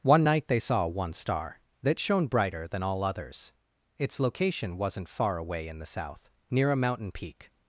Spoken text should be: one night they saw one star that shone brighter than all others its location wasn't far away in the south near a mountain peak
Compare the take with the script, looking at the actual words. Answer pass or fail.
pass